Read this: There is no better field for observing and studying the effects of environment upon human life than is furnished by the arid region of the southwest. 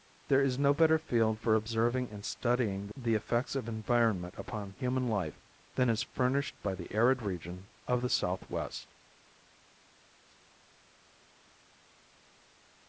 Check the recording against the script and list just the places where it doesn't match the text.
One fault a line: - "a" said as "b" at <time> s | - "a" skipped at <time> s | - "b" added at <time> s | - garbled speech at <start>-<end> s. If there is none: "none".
none